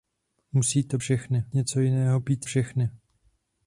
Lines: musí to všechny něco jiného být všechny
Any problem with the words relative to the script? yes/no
no